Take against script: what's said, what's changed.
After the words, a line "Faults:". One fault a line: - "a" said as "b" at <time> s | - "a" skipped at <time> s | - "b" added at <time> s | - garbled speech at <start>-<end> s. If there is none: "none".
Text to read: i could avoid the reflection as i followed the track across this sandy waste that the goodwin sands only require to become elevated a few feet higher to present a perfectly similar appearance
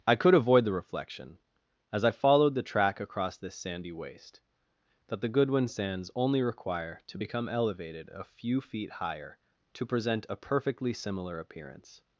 i could avoid the reflection as i followed the track across this sandy waste that the goodwin sands only require to become elevated a few feet higher to present a perfectly similar appearance
Faults:
none